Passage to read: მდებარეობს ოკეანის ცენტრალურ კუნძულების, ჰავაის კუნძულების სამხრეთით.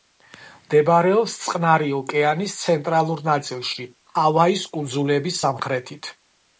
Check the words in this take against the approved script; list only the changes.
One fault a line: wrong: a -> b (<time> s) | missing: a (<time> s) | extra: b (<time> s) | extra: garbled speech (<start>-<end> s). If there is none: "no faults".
extra: წყნარი (1.4 s)
wrong: კუნძულების -> ნაწილში (3.3 s)